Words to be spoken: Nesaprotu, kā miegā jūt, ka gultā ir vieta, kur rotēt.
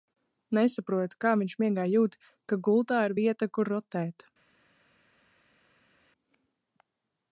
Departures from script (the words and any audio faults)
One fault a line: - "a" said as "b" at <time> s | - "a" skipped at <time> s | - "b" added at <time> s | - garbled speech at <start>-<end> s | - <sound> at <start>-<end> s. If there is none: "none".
- "viņš" added at 1.4 s